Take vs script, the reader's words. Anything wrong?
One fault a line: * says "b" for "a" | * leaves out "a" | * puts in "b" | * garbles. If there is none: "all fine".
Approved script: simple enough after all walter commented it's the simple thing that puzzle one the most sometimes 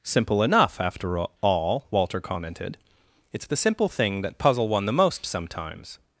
all fine